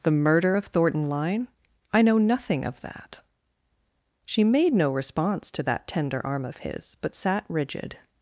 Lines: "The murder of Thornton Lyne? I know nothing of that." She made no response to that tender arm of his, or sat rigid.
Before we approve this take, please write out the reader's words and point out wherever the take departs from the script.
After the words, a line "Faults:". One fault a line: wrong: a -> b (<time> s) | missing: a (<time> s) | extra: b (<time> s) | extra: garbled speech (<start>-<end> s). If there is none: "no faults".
"The murder of Thornton Lyne? I know nothing of that." She made no response to that tender arm of his, but sat rigid.
Faults:
wrong: or -> but (7.0 s)